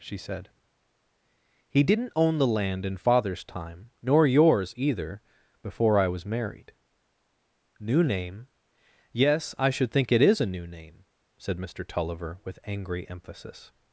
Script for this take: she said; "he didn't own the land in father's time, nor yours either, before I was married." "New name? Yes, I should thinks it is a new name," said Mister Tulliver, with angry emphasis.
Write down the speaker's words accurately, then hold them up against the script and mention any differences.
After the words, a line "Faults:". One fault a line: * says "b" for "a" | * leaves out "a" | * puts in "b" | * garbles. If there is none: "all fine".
she said; "he didn't own the land in father's time, nor yours either, before I was married." "New name? Yes, I should think it is a new name," said Mister Tulliver, with angry emphasis.
Faults:
* says "think" for "thinks"